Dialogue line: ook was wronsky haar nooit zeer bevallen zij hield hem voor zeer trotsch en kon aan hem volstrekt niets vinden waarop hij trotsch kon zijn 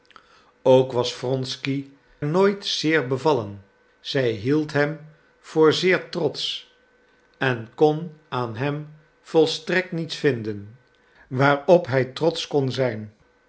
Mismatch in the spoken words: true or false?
true